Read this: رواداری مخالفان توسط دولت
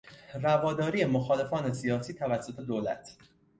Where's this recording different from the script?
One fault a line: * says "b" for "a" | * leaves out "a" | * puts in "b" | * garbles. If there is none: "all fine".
* puts in "سیاسی"